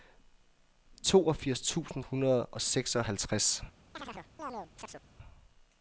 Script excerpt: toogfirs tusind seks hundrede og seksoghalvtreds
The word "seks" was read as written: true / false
false